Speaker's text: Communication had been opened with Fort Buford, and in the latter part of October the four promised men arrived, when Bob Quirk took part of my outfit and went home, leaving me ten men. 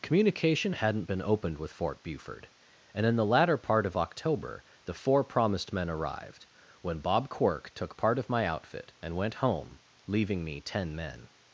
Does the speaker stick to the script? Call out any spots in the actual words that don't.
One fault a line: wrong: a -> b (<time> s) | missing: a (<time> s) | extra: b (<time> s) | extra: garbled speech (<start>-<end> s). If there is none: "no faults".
wrong: had -> hadn't (0.7 s)